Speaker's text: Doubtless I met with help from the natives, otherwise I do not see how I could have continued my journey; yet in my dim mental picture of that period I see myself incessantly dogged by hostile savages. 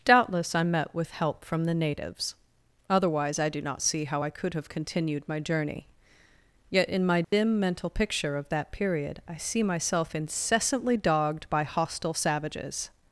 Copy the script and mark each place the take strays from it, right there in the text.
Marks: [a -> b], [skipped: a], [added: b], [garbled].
Doubtless I met with help from the natives, otherwise I do not see how I could have continued my journey; yet in my dim mental picture of that period I see myself incessantly dogged by hostile savages.